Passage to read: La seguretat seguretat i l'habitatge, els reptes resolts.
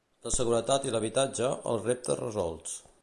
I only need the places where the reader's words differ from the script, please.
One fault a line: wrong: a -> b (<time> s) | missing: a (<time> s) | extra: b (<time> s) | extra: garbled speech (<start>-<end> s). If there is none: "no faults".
missing: seguretat (0.9 s)